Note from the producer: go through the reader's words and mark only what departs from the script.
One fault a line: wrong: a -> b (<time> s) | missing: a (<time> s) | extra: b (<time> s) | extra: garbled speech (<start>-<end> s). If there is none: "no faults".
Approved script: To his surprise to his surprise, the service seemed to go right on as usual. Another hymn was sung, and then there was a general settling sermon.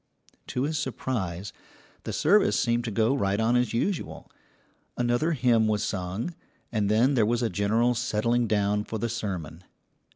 missing: to his surprise (1.5 s)
extra: down for the (8.5 s)